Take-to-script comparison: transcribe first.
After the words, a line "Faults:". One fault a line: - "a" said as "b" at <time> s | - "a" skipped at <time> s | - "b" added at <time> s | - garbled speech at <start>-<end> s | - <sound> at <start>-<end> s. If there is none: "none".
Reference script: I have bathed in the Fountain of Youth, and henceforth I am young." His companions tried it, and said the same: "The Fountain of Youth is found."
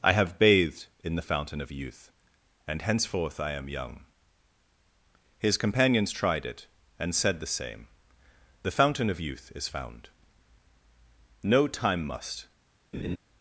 I have bathed in the Fountain of Youth, and henceforth I am young." His companions tried it, and said the same: "The Fountain of Youth is found." No time must
Faults:
- "No time must" added at 11.4 s
- laugh at 12.9-13.2 s